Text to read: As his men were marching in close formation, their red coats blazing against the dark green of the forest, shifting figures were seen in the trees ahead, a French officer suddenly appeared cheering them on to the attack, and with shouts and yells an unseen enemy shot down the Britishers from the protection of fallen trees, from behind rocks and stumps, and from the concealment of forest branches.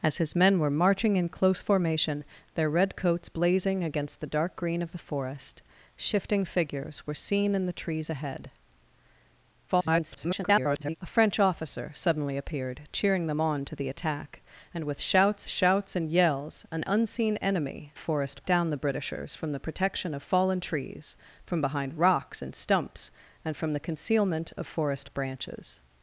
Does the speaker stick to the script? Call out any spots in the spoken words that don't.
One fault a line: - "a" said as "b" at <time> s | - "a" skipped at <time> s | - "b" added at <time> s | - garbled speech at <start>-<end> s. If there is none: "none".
- garbled speech at 9.7-11.0 s
- "shouts" added at 15.5 s
- "shot" said as "forest" at 18.0 s